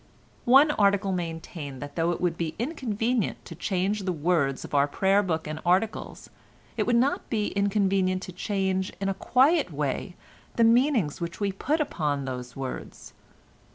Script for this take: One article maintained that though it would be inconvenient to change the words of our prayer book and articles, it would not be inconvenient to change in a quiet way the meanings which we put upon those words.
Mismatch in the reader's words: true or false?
false